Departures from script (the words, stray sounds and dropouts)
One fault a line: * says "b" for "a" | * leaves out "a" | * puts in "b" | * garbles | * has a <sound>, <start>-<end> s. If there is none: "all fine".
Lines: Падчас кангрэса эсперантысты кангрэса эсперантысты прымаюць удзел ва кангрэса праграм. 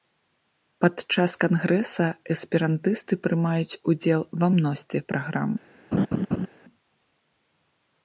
* leaves out "кангрэса эсперантысты"
* says "мностве" for "кангрэса"
* has a laugh, 5.9-6.5 s